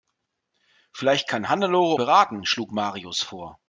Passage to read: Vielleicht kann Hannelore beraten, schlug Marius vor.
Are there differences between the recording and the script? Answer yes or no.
no